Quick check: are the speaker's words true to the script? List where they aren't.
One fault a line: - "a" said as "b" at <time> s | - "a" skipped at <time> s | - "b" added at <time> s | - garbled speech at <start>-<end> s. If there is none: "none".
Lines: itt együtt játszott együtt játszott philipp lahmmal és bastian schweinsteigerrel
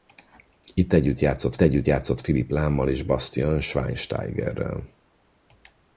none